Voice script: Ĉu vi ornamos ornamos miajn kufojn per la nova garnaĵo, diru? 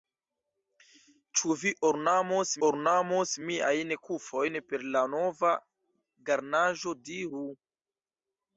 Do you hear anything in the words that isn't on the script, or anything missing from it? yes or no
no